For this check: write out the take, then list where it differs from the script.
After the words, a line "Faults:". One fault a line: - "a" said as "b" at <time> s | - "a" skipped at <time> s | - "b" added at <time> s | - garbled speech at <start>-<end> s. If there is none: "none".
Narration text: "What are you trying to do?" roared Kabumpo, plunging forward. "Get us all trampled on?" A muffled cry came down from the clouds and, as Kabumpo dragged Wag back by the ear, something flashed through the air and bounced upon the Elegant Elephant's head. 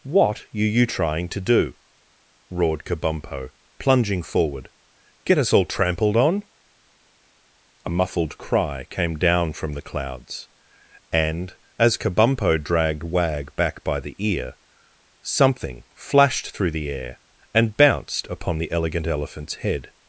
"What are you trying to do?" roared Kabumpo, plunging forward. "Get us all trampled on?" A muffled cry came down from the clouds and, as Kabumpo dragged Wag back by the ear, something flashed through the air and bounced upon the Elegant Elephant's head.
Faults:
none